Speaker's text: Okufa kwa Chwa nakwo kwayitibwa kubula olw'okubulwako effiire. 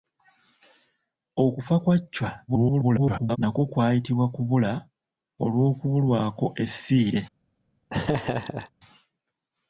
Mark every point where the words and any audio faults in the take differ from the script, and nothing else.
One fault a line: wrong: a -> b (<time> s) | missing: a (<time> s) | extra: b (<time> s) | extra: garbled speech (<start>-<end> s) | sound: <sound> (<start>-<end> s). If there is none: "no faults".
extra: garbled speech (2.5-3.4 s)
sound: laugh (7.9-8.7 s)